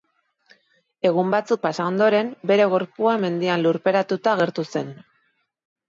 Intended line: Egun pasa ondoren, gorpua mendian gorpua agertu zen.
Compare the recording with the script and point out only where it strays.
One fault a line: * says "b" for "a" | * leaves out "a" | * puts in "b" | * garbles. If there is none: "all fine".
* puts in "batzuk"
* puts in "bere"
* says "lurperatuta" for "gorpua"